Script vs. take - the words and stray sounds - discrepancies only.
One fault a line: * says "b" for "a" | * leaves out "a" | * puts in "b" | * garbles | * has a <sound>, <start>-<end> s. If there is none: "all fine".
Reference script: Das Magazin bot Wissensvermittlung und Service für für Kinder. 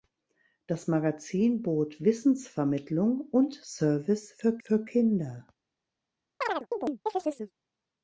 * has a chirp, 6.4-7.5 s